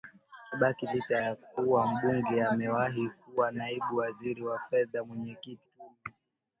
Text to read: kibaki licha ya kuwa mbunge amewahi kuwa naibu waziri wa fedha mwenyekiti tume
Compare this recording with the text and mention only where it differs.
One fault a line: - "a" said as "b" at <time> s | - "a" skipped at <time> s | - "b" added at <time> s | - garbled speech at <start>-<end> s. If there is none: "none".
none